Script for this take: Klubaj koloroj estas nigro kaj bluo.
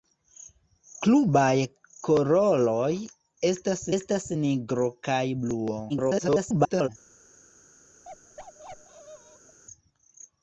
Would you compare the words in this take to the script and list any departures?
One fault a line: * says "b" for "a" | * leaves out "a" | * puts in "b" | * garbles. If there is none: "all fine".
* puts in "estas"
* garbles